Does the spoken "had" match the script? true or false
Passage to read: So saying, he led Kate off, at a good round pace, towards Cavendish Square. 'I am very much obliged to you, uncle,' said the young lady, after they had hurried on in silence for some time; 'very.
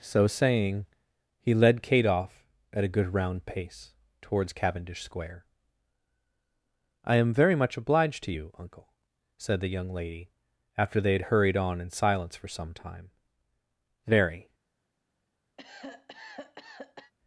true